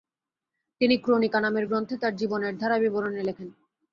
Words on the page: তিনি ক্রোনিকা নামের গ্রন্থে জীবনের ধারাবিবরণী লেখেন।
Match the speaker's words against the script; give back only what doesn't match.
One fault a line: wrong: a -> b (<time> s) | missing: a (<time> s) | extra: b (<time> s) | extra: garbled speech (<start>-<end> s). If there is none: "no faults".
extra: তার (2.0 s)